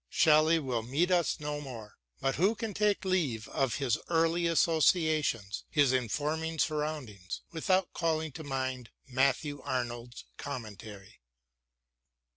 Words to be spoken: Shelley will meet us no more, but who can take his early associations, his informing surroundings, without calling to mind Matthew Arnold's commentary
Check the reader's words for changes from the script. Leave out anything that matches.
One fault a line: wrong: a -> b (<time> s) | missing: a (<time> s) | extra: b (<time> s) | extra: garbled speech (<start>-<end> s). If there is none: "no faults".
extra: leave of (3.0 s)